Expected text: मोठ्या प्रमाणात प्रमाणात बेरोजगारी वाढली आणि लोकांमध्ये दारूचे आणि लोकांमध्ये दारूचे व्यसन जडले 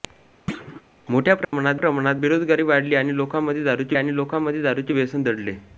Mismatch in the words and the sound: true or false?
true